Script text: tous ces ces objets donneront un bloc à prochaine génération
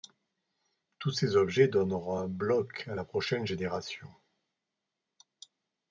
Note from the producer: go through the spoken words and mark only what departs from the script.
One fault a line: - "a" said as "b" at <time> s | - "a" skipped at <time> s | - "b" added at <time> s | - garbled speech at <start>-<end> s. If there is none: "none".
- "ces" skipped at 1.4 s
- "la" added at 2.9 s